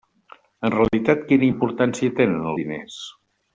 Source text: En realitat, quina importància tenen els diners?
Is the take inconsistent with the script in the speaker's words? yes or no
yes